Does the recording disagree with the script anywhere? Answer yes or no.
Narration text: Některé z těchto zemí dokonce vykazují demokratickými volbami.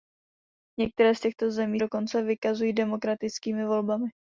no